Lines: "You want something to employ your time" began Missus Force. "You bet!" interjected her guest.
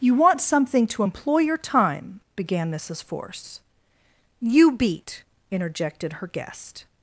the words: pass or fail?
fail